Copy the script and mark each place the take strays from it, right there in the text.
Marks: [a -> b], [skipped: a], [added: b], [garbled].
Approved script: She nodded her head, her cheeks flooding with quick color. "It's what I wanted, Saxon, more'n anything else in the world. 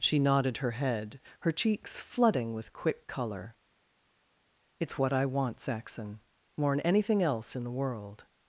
She nodded her head, her cheeks flooding with quick color. "It's what I [wanted, -> want] Saxon, more'n anything else in the world.